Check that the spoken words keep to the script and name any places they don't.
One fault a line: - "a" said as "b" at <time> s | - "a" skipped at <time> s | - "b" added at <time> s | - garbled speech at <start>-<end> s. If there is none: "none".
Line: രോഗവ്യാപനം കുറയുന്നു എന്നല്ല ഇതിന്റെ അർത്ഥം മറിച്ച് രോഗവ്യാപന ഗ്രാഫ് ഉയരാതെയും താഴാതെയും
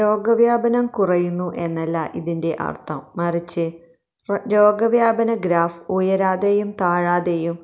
none